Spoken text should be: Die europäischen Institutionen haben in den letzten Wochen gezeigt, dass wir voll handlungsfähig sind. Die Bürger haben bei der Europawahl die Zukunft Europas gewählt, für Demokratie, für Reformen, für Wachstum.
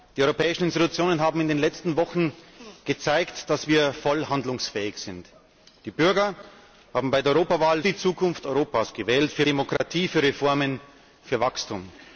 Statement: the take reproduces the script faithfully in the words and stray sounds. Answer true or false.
false